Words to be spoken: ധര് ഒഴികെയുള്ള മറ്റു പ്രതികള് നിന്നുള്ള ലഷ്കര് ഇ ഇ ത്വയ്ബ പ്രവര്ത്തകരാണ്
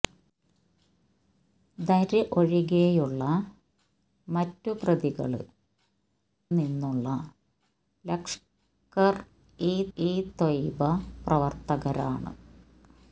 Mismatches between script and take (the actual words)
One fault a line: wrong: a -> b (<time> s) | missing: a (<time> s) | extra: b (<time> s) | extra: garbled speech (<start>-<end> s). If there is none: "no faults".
no faults